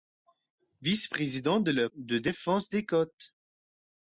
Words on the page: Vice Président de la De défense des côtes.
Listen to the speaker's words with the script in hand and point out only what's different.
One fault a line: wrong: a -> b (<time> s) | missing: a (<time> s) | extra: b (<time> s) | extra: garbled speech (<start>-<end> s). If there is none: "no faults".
no faults